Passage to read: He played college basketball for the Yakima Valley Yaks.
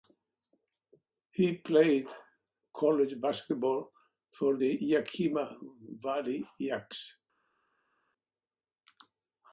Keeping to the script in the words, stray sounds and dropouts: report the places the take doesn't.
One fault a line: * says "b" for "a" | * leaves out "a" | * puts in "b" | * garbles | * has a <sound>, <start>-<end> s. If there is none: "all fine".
all fine